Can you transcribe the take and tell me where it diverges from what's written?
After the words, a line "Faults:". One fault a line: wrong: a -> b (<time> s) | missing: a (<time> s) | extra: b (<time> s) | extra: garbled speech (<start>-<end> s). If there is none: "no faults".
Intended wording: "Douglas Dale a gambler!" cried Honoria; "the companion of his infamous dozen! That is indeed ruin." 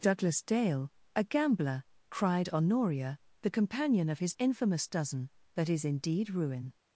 "Douglas Dale a gambler!" cried Honoria; "the companion of his infamous dozen! That is indeed ruin."
Faults:
no faults